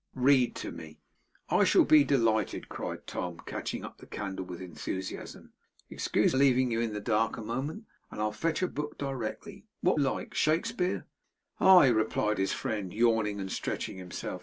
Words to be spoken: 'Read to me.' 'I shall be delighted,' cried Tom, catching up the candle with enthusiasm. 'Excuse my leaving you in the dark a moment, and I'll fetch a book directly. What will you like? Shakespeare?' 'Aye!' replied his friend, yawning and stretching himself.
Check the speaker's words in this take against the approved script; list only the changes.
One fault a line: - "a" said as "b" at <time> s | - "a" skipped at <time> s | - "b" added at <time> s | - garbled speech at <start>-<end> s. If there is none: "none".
- "my" skipped at 6.3 s
- "will you" skipped at 10.0 s